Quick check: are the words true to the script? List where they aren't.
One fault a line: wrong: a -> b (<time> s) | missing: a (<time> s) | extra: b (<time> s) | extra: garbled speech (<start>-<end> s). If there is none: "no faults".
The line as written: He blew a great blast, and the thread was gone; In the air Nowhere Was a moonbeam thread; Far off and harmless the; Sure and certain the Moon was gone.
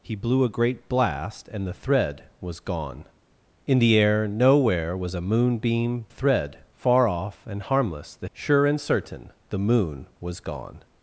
no faults